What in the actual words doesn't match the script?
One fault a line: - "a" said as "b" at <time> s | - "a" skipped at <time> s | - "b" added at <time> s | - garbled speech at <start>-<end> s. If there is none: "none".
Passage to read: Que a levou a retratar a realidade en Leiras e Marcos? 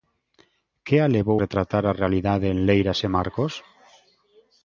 - "a" skipped at 1.4 s